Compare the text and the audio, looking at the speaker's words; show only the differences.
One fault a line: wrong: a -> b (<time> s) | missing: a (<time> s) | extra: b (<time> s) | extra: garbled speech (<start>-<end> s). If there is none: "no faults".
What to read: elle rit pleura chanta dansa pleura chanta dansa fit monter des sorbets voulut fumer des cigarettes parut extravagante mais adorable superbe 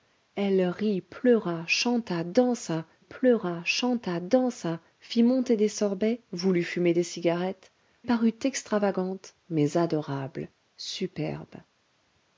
no faults